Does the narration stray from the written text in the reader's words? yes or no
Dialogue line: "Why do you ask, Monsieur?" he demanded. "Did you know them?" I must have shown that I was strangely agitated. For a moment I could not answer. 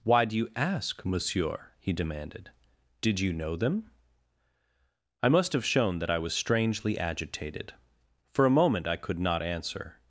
no